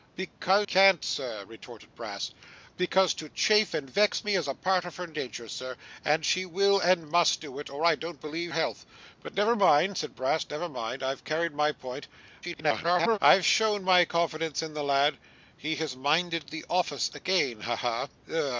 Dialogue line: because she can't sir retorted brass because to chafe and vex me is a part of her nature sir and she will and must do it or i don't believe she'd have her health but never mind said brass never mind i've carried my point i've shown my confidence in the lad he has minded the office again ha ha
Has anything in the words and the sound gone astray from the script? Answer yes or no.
yes